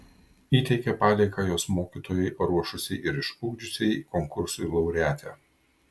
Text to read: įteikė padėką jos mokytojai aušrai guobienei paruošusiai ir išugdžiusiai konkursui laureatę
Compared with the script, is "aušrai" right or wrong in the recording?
wrong